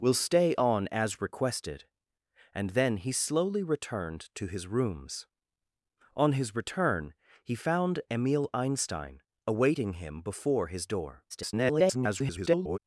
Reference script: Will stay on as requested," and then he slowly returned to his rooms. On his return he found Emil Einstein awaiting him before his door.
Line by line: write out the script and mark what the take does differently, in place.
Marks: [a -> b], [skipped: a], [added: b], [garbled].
Will stay on as requested," and then he slowly returned to his rooms. On his return he found Emil Einstein awaiting him before his door. [garbled]